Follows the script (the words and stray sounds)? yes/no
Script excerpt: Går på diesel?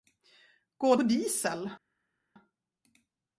yes